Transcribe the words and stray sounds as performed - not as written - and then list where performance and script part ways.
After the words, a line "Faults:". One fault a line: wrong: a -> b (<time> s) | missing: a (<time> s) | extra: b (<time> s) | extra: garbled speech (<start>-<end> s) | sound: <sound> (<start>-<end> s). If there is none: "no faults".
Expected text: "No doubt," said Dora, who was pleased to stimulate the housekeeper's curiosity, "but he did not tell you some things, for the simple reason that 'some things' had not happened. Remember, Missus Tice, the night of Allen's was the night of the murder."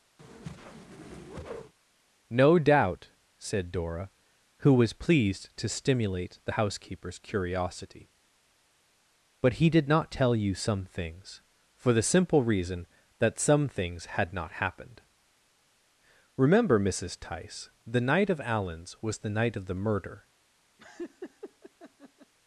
"No doubt," said Dora, who was pleased to stimulate the housekeeper's curiosity, "but he did not tell you some things, for the simple reason that 'some things' had not happened. Remember, Missus Tice, the night of Allen's was the night of the murder."
Faults:
sound: whoosh (0.2-1.7 s)
sound: laugh (20.8-22.3 s)